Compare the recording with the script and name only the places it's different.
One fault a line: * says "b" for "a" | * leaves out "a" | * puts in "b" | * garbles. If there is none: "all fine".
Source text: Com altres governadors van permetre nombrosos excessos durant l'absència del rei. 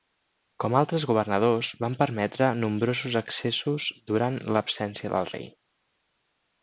all fine